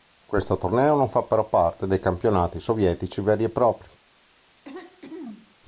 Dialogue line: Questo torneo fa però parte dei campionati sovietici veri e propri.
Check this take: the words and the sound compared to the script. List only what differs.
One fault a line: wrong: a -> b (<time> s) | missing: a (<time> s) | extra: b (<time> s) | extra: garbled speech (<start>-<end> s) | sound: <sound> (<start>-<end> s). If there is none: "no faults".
extra: non (0.9 s)
sound: throat clearing (4.6-5.6 s)